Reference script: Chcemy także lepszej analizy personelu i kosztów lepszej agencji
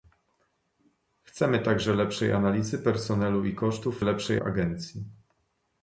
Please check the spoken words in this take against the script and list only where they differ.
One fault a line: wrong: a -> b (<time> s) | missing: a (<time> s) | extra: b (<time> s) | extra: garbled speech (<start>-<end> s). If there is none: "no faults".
no faults